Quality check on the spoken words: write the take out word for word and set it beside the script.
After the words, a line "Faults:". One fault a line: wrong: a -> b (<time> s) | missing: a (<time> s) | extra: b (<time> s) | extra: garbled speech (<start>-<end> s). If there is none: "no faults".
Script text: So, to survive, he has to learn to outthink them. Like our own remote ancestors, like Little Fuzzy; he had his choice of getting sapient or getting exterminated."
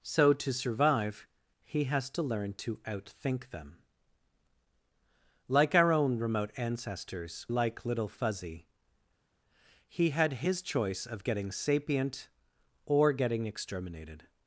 So, to survive, he has to learn to outthink them. Like our own remote ancestors, like Little Fuzzy; he had his choice of getting sapient or getting exterminated."
Faults:
no faults